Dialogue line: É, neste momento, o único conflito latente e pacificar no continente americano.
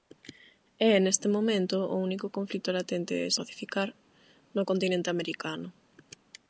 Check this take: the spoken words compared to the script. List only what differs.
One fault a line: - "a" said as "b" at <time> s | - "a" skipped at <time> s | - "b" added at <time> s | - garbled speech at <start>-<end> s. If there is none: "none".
none